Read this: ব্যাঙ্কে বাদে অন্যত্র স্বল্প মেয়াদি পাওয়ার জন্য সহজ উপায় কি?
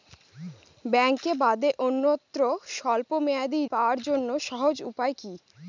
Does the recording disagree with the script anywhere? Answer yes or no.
no